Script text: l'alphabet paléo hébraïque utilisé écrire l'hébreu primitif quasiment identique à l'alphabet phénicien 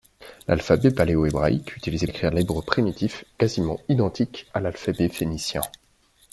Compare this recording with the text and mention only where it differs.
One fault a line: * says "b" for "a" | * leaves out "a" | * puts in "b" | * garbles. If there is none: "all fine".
all fine